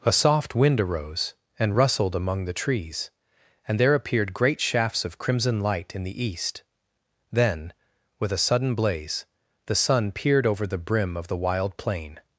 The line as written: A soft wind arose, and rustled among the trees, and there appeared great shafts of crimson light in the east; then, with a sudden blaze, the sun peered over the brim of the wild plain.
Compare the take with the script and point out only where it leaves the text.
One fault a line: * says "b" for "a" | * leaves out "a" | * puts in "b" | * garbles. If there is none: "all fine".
all fine